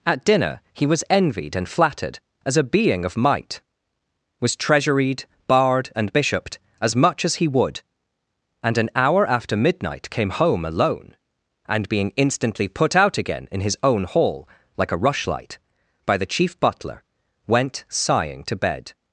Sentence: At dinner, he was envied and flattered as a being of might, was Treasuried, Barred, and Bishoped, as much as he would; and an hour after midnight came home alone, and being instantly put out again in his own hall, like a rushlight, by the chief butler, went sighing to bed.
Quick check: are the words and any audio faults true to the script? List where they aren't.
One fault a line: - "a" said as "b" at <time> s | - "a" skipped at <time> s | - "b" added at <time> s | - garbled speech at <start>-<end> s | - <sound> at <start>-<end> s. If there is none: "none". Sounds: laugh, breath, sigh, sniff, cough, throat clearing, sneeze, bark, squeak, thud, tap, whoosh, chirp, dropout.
none